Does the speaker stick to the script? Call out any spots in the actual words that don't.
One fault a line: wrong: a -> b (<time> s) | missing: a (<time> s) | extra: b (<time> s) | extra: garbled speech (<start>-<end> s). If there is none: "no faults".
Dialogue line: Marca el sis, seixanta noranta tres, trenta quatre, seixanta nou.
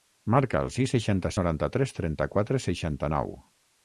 no faults